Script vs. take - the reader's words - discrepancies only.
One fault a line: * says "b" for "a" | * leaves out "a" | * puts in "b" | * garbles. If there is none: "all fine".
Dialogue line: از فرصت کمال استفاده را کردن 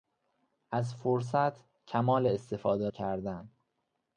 * leaves out "را"